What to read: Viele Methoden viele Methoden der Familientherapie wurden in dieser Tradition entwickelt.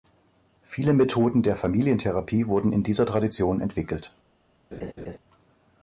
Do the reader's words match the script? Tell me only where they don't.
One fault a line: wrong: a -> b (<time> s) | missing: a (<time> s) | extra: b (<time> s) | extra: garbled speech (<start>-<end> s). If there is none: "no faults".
missing: viele Methoden (1.4 s)